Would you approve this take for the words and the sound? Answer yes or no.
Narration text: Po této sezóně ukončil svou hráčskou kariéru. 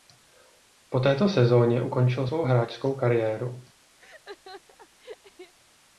no